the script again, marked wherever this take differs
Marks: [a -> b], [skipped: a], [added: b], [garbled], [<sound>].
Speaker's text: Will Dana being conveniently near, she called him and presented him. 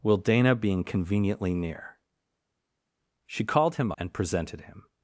Will Dana being conveniently near, she called him and presented him.